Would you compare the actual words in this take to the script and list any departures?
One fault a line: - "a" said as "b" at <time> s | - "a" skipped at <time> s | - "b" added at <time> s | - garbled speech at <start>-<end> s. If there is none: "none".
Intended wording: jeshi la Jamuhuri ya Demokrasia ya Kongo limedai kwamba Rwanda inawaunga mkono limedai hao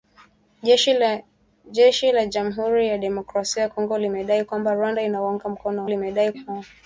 none